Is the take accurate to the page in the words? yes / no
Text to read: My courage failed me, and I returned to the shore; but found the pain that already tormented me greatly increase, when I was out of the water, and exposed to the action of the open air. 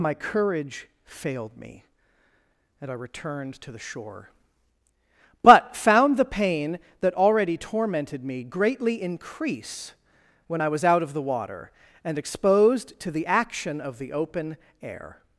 yes